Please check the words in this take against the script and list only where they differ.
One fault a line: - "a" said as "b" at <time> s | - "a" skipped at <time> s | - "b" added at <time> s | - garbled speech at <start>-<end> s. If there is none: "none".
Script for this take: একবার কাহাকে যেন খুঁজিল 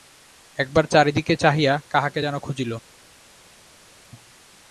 - "চারি দিকে চাহিয়া" added at 0.8 s